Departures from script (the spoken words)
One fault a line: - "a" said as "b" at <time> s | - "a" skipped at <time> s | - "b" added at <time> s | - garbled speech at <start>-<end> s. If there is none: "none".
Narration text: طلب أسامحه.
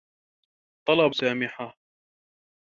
none